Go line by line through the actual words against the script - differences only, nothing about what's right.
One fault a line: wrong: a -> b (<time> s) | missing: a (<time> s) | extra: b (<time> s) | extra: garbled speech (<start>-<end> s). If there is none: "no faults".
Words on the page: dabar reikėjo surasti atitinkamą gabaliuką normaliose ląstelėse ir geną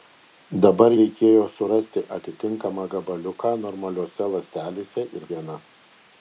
no faults